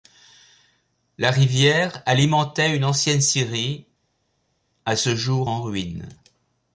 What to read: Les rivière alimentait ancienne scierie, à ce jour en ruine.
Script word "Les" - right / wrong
wrong